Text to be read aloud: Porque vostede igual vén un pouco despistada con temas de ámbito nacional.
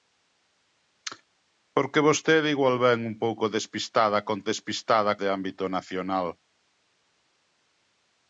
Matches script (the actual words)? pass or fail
fail